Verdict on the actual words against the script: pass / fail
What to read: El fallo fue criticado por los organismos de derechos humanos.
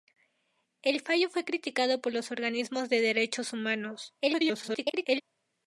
fail